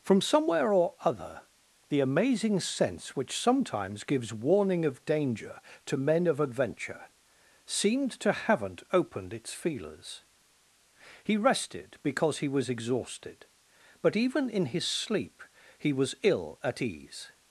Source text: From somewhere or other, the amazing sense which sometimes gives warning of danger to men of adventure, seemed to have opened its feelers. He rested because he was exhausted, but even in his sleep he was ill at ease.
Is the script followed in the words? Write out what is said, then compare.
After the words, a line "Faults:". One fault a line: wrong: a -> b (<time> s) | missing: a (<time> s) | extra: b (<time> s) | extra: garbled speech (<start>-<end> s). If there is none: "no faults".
From somewhere or other, the amazing sense which sometimes gives warning of danger to men of adventure, seemed to haven't opened its feelers. He rested because he was exhausted, but even in his sleep he was ill at ease.
Faults:
wrong: have -> haven't (8.3 s)